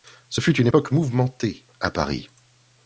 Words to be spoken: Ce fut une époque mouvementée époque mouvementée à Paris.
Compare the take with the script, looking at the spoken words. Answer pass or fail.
fail